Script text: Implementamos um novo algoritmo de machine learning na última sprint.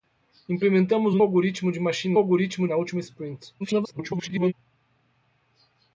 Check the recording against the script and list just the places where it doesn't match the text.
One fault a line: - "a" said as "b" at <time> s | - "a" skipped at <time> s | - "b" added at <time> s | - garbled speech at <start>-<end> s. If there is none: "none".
- "novo" skipped at 1.2 s
- "learning" said as "algoritmo" at 2.2 s
- garbled speech at 3.6-4.5 s